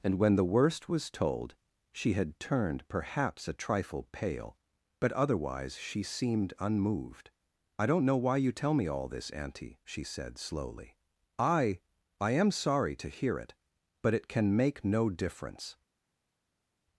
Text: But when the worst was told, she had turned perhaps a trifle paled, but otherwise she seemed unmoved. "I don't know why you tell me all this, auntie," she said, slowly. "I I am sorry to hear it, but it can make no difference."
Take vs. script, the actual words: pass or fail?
fail